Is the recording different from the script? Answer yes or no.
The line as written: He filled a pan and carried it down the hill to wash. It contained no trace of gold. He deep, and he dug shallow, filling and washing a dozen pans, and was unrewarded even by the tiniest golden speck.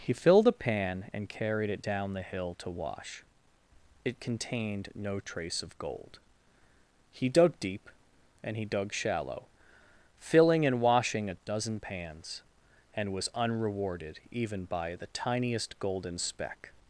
yes